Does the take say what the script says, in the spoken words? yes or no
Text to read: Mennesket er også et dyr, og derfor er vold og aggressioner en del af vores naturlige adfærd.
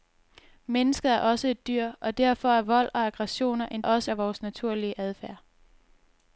no